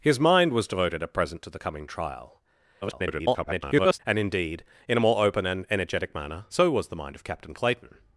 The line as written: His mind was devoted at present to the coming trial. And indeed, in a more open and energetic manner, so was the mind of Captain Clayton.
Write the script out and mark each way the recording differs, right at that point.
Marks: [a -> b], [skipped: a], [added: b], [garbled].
His mind was devoted at present to the coming trial. [garbled] And indeed, in a more open and energetic manner, so was the mind of Captain Clayton.